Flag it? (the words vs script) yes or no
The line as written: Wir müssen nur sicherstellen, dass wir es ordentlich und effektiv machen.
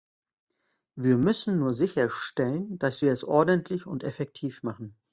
no